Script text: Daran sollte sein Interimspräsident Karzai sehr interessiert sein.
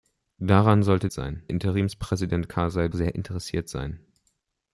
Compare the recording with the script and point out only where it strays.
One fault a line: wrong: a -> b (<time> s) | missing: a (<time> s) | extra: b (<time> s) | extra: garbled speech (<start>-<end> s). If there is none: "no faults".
no faults